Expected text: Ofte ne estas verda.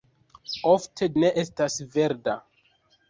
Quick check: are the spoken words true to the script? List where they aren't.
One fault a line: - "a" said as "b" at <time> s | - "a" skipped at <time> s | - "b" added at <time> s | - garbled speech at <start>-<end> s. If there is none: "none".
none